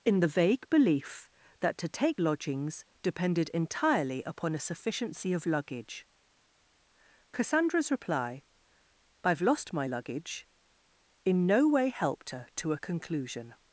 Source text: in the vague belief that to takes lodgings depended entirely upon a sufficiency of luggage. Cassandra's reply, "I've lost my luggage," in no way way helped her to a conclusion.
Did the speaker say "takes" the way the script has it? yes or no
no